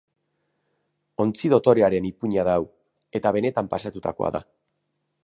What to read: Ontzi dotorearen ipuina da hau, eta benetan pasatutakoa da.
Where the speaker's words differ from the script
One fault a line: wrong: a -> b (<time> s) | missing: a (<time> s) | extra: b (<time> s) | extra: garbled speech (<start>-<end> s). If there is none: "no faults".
no faults